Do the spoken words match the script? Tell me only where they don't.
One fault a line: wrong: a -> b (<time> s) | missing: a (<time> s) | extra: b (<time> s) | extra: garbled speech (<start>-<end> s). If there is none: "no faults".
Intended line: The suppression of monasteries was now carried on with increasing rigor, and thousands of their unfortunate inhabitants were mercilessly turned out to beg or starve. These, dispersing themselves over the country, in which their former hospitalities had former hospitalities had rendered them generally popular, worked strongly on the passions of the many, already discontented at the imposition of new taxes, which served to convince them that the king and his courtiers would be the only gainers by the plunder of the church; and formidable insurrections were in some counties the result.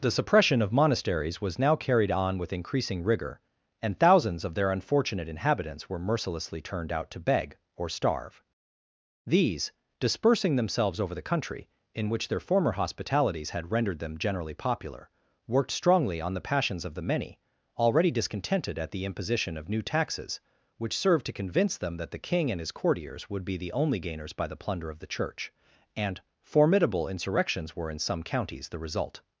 missing: former hospitalities had (13.7 s)